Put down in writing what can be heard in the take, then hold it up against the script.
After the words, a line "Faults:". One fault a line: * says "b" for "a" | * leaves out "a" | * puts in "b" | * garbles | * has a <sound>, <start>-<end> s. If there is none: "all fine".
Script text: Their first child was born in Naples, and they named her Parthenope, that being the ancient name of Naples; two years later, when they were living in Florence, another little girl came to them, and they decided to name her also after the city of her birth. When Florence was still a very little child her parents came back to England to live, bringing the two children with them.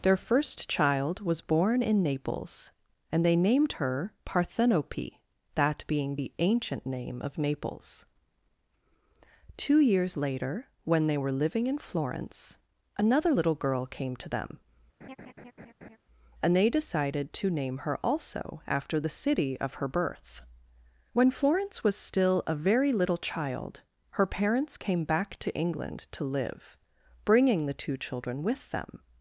Their first child was born in Naples, and they named her Parthenope, that being the ancient name of Naples; two years later, when they were living in Florence, another little girl came to them, and they decided to name her also after the city of her birth. When Florence was still a very little child her parents came back to England to live, bringing the two children with them.
Faults:
* has a laugh, 15.0-16.0 s